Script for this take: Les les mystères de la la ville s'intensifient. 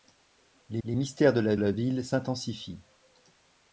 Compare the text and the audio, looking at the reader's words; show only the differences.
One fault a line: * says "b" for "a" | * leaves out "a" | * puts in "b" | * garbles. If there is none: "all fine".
all fine